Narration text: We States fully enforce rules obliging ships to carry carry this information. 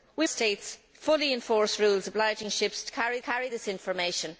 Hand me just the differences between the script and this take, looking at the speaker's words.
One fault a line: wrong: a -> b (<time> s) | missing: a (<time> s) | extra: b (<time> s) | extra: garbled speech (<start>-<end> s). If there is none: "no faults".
no faults